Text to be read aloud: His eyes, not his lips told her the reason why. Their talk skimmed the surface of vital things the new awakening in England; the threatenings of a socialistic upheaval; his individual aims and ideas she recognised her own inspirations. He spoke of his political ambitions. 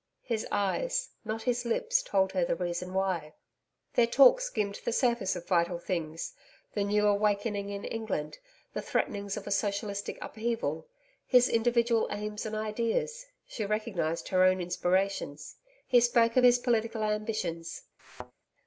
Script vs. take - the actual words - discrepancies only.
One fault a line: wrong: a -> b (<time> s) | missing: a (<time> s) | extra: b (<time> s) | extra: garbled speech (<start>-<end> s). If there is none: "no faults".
no faults